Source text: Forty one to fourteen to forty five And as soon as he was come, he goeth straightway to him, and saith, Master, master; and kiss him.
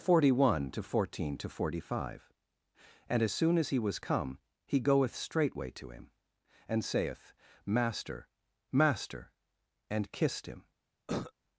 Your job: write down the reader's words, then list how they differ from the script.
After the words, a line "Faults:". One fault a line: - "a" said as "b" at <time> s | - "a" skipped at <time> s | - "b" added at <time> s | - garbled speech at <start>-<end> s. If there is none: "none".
Forty one to fourteen to forty five And as soon as he was come, he goeth straightway to him, and saith, Master, master; and kissed him.
Faults:
- "kiss" said as "kissed" at 10.1 s